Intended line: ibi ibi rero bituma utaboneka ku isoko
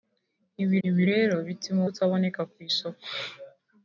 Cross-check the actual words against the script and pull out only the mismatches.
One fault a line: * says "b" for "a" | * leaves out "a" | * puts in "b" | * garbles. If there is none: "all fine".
all fine